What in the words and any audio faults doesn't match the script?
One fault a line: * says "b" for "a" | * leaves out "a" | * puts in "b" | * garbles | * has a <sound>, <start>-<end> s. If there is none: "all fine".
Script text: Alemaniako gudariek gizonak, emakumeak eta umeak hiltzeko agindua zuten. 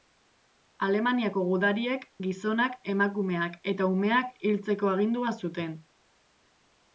all fine